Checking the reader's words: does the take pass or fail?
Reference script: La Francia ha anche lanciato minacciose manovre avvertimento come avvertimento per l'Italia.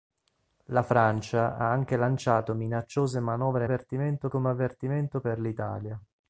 pass